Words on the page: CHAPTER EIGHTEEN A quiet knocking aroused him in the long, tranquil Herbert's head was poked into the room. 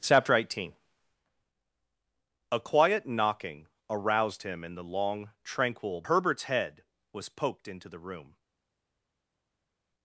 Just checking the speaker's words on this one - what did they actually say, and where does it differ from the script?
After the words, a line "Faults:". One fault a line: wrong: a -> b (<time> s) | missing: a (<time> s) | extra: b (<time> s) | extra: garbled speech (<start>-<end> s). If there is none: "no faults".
CHAPTER EIGHTEEN A quiet knocking aroused him in the long, tranquil Herbert's head was poked into the room.
Faults:
no faults